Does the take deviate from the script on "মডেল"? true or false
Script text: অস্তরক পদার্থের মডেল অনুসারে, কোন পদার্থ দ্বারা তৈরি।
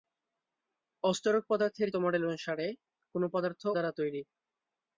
false